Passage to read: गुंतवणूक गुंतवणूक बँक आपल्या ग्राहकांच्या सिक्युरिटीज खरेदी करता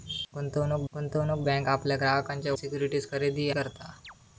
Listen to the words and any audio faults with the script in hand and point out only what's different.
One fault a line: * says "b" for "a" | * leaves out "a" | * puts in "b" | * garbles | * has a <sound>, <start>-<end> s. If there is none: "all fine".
* has a chirp, 4.0-4.1 s